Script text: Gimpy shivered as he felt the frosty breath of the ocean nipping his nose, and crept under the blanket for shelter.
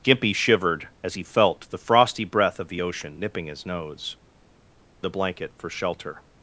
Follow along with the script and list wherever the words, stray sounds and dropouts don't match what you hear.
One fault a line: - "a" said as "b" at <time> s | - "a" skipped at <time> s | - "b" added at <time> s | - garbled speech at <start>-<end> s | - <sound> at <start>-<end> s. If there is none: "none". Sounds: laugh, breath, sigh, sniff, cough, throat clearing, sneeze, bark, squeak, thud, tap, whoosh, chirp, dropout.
- "and crept under" skipped at 4.2 s